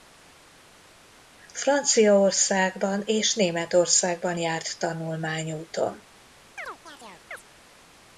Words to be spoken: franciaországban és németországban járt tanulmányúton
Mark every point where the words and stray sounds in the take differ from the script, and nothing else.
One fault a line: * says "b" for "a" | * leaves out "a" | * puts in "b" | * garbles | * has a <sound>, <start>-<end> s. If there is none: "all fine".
* has a chirp, 6.6-7.4 s